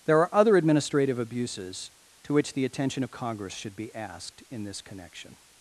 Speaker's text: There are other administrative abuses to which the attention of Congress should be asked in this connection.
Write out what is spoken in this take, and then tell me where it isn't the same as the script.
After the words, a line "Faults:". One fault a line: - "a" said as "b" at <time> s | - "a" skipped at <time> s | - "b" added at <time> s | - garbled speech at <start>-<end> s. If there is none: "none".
There are other administrative abuses to which the attention of Congress should be asked in this connection.
Faults:
none